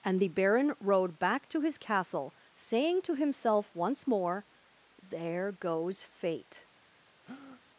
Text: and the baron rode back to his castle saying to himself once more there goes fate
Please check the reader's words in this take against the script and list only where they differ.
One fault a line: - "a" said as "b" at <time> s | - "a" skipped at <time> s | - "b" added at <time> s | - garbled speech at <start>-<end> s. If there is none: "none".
none